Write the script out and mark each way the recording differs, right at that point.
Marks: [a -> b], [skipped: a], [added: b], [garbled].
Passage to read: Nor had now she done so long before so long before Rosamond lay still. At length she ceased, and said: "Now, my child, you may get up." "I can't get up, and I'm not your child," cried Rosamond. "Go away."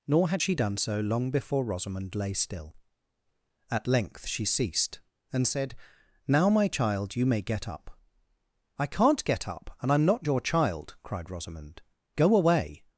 Nor had [skipped: now] she done so long before [skipped: so long before] Rosamond lay still. At length she ceased, and said: "Now, my child, you may get up." "I can't get up, and I'm not your child," cried Rosamond. "Go away."